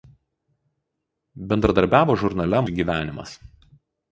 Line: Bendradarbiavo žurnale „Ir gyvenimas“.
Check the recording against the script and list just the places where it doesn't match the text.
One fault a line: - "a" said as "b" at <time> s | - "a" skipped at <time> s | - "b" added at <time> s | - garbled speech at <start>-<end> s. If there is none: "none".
none